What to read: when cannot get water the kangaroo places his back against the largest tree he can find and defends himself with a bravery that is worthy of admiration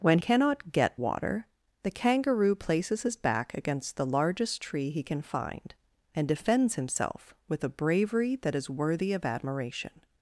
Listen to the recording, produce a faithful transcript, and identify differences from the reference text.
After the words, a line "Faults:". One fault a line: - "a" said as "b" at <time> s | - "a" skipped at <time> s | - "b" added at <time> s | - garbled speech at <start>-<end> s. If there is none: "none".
when cannot get water the kangaroo places his back against the largest tree he can find and defends himself with a bravery that is worthy of admiration
Faults:
none